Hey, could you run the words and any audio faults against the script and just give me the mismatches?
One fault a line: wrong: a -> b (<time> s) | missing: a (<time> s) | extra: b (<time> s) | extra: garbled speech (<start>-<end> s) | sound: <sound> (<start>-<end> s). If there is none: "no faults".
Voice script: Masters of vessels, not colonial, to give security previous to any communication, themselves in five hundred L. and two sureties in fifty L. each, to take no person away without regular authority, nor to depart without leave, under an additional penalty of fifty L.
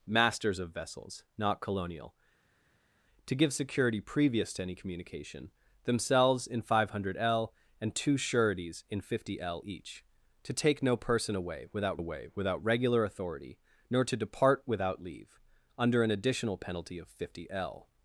extra: away without (12.0 s)